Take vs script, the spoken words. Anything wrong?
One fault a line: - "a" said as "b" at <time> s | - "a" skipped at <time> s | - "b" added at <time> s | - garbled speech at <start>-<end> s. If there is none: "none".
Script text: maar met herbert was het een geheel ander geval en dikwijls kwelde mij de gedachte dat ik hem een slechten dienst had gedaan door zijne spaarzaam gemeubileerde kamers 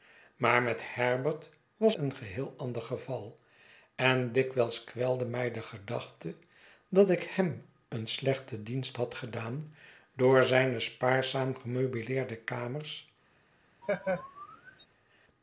- "het" skipped at 1.9 s